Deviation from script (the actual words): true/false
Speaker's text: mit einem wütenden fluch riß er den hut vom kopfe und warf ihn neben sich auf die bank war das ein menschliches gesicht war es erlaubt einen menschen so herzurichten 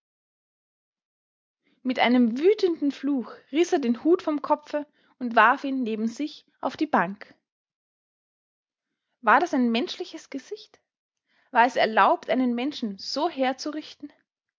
false